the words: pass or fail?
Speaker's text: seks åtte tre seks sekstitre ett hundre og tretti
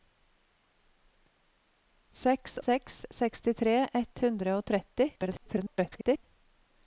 fail